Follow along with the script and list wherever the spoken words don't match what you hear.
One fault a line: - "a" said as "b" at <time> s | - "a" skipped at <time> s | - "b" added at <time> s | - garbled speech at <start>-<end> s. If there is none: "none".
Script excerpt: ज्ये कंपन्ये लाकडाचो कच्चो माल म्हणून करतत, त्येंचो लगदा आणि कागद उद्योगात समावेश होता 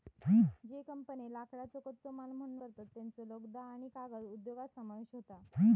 none